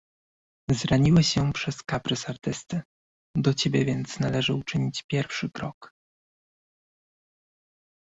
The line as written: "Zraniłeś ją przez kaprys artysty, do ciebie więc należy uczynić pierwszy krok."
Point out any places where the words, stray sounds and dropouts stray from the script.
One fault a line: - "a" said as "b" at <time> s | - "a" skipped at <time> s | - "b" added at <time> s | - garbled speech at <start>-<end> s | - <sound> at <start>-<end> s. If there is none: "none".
none